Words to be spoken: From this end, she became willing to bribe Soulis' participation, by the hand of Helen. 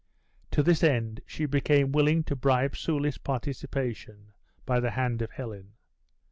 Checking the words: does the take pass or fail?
fail